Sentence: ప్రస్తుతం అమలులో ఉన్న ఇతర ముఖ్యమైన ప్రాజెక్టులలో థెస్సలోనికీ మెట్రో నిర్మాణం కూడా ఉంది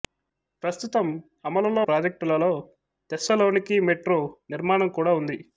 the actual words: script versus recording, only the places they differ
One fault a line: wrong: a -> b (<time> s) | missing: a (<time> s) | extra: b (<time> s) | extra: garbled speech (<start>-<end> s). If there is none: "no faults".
missing: ఉన్న ఇతర ముఖ్యమైన (1.8 s)